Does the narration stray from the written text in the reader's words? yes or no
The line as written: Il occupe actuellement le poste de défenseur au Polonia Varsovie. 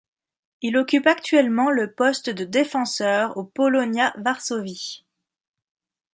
no